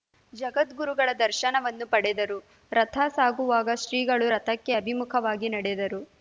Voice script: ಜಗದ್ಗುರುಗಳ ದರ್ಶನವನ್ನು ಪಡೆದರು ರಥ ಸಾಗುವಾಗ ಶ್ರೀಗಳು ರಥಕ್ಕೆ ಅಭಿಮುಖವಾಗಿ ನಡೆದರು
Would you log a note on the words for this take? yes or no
no